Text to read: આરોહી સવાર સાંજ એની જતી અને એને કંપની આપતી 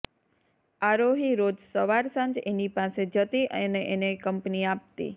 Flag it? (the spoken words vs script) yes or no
yes